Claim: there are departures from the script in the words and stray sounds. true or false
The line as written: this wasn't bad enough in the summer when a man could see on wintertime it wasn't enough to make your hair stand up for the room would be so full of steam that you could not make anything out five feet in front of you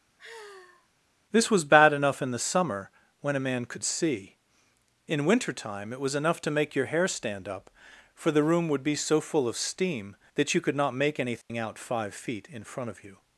true